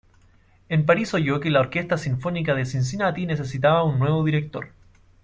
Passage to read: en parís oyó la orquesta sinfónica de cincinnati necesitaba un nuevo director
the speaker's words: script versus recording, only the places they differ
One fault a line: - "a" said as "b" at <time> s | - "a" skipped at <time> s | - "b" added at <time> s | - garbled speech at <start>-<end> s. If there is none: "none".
- "que" added at 1.4 s